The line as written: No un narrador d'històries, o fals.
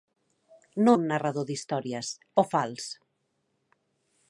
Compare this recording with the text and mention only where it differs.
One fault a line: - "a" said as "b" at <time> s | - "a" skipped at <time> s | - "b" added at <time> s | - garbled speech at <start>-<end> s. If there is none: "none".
none